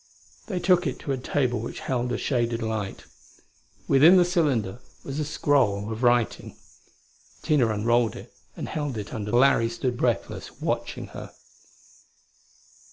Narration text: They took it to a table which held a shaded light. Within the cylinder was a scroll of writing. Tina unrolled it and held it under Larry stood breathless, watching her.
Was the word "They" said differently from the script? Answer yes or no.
no